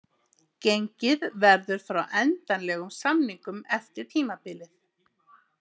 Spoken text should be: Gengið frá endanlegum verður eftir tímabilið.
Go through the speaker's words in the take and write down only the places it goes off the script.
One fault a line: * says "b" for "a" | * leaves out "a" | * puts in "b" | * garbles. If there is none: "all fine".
* puts in "verður"
* says "samningum" for "verður"